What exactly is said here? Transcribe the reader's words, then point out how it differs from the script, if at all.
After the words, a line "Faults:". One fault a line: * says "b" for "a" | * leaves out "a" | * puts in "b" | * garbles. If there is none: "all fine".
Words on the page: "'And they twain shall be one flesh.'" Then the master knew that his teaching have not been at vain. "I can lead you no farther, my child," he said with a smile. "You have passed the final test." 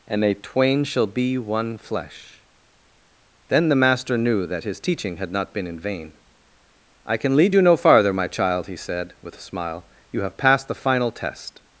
"'And they twain shall be one flesh.'" Then the master knew that his teaching had not been in vain. "I can lead you no farther, my child," he said with a smile. "You have passed the final test."
Faults:
* says "had" for "have"
* says "in" for "at"